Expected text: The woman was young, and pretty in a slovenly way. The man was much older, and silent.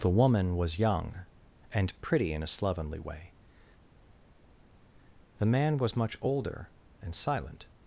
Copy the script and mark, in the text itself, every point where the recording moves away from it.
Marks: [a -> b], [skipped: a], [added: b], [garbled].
The woman was young, and pretty in a slovenly way. The man was much older, and silent.